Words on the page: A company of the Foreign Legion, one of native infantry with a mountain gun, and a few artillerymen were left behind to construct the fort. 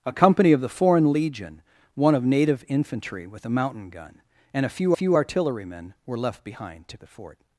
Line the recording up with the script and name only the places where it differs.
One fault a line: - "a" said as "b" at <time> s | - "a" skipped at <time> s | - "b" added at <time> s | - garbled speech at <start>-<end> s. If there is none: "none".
- "few" added at 4.9 s
- "construct" skipped at 7.0 s